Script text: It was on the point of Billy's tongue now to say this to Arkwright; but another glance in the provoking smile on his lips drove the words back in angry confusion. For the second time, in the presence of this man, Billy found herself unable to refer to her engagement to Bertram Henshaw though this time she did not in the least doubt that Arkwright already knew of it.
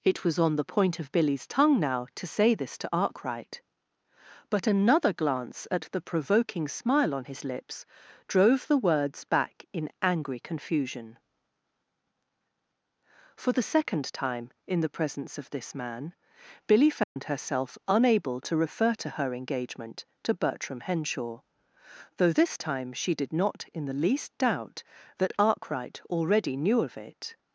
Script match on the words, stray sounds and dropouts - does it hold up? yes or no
no